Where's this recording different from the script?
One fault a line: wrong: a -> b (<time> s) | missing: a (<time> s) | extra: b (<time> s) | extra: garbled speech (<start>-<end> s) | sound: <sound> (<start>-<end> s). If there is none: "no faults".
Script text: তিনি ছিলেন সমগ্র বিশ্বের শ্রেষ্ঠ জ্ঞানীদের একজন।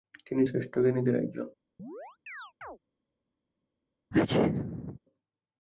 missing: ছিলেন সমগ্র বিশ্বের (0.4 s)
sound: chirp (1.8-2.8 s)
sound: sneeze (4.1-5.0 s)